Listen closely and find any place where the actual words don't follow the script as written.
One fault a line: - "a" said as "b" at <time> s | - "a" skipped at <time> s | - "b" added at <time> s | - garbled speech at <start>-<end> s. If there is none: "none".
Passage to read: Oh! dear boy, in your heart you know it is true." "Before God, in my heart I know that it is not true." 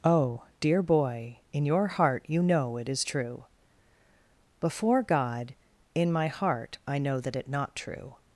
- "is" skipped at 7.5 s